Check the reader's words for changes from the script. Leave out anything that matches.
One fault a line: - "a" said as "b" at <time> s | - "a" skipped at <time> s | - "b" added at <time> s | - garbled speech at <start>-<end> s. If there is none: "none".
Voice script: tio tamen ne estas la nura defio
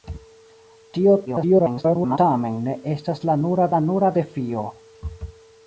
- garbled speech at 1.3-2.2 s
- "la nura" added at 3.7 s